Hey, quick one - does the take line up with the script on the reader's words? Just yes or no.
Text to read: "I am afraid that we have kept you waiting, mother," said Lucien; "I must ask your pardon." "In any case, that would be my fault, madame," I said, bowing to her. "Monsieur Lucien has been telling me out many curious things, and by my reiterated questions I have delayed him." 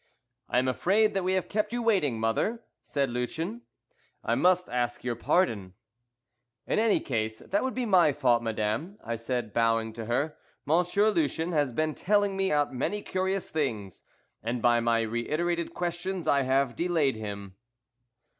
yes